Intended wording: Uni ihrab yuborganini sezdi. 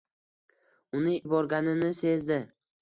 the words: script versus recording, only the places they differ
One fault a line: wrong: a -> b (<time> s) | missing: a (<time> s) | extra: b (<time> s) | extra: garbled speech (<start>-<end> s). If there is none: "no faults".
missing: ihrab (1.1 s)